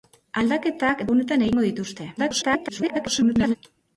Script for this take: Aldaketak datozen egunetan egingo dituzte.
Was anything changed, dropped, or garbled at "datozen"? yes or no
yes